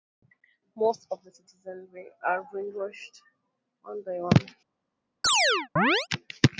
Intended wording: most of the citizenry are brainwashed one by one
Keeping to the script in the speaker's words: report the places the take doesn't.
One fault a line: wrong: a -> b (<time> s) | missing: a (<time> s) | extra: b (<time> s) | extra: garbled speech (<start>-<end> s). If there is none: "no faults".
no faults